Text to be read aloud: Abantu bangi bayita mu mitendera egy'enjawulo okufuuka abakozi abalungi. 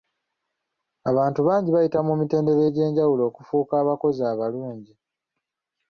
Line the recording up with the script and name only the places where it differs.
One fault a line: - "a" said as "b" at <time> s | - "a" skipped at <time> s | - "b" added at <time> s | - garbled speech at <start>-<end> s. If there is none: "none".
none